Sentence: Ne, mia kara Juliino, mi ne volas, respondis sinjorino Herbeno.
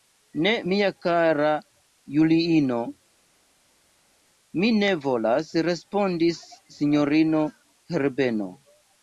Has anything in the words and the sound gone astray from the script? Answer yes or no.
no